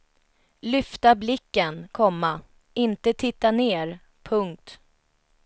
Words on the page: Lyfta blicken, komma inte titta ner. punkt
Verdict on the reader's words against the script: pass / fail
pass